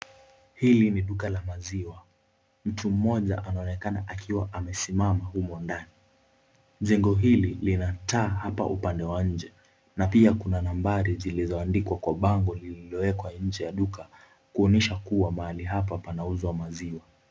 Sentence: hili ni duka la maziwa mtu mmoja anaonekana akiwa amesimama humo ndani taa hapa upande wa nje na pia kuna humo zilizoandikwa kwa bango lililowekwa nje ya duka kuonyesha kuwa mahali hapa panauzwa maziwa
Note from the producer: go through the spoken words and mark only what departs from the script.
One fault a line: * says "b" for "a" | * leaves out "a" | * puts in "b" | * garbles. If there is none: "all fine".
* puts in "jengo hili lina"
* says "nambari" for "humo"